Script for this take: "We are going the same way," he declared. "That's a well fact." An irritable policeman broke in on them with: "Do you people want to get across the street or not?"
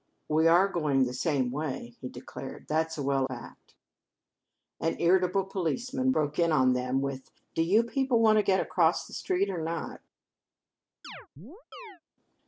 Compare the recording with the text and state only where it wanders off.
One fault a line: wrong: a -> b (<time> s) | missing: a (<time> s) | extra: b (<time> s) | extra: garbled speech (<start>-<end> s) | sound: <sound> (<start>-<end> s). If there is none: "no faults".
sound: chirp (11.0-12.0 s)